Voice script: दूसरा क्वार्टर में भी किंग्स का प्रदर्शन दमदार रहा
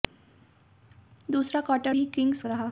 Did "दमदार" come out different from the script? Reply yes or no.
yes